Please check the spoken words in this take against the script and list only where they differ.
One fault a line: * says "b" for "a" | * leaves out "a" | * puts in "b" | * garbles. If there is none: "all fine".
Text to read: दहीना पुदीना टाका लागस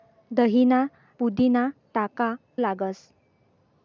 all fine